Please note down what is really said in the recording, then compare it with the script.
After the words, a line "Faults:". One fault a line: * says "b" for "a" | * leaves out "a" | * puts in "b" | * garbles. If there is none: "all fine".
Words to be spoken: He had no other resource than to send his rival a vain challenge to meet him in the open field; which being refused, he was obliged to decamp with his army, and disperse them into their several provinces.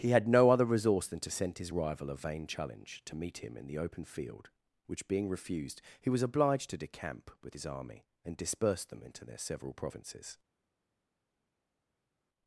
He had no other resource than to send his rival a vain challenge to meet him in the open field; which being refused, he was obliged to decamp with his army, and disperse them into their several provinces.
Faults:
all fine